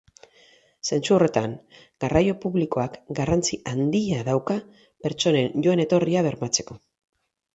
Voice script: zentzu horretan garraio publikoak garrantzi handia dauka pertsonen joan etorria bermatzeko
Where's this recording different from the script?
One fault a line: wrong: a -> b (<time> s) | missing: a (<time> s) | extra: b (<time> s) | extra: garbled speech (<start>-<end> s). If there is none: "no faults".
no faults